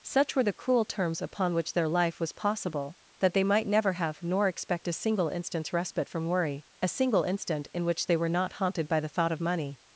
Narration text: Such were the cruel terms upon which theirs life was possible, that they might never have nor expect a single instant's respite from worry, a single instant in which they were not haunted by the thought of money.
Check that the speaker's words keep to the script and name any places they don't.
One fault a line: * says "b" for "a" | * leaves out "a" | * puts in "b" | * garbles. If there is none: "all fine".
* says "their" for "theirs"